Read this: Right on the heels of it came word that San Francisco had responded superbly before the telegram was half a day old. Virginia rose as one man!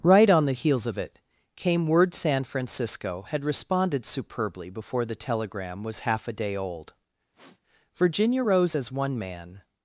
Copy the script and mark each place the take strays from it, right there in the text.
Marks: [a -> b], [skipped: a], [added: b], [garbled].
Right on the heels of it came word [skipped: that] San Francisco had responded superbly before the telegram was half a day old. Virginia rose as one man!